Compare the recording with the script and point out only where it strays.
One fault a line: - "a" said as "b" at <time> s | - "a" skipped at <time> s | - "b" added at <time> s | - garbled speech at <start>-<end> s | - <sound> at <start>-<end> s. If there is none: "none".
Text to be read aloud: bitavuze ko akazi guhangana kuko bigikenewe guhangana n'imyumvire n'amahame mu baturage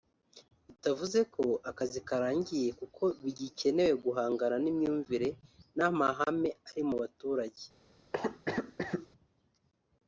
- "guhangana" said as "karangiye" at 2.1 s
- "ari" added at 6.7 s
- cough at 8.1-9.1 s